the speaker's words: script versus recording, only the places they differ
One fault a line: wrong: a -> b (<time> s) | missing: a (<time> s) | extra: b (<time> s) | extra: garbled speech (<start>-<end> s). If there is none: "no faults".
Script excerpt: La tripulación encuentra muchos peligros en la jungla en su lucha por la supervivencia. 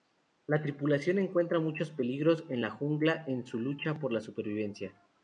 no faults